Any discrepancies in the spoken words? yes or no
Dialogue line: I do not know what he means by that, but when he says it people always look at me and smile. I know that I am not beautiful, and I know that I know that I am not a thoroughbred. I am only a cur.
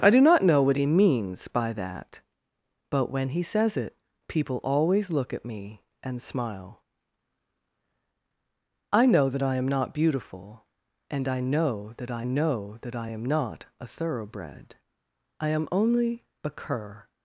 no